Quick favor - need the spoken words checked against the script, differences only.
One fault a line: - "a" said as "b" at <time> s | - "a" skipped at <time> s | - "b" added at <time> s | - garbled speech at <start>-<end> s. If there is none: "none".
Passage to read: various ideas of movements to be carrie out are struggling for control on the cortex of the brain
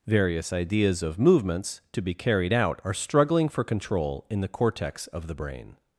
- "carrie" said as "carried" at 2.1 s
- "on" said as "in" at 4.3 s